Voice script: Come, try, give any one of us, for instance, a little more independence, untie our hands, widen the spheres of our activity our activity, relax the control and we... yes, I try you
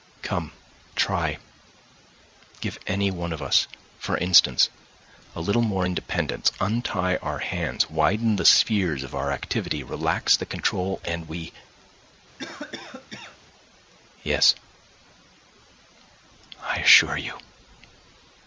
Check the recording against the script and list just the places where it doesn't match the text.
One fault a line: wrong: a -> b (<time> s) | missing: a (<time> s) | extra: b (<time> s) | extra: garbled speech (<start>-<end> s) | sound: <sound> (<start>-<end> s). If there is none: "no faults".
missing: our activity (9.8 s)
sound: cough (12.4-13.4 s)
wrong: try -> assure (16.8 s)